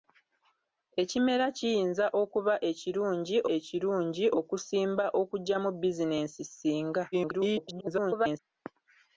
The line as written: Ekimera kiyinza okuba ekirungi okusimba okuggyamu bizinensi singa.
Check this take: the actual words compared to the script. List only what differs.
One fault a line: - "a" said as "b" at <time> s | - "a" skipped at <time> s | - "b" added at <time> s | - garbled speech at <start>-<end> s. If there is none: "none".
- "ekirungi" added at 3.6 s
- garbled speech at 7.1-8.4 s